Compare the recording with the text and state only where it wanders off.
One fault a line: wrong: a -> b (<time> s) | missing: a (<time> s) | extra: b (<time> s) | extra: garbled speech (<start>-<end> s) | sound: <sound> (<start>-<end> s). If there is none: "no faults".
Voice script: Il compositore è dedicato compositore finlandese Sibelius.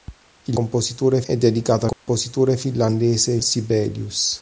sound: dropout (1.9-2.1 s)